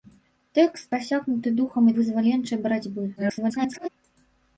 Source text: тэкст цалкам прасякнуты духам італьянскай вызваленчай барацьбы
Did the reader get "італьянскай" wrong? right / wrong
wrong